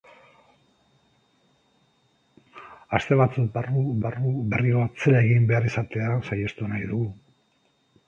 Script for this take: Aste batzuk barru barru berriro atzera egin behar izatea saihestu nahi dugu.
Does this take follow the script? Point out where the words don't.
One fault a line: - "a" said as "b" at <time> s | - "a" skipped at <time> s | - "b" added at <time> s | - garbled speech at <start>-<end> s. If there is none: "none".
none